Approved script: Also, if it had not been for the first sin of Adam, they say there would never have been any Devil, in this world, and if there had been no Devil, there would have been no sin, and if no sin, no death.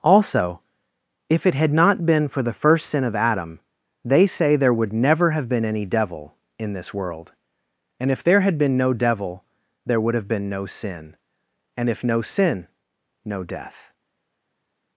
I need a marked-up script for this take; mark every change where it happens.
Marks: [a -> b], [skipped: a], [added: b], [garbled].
Also, if it had not been for the first sin of Adam, they say there would never have been any Devil, in this world, and if there had been no Devil, there would have been no sin, and if no sin, no death.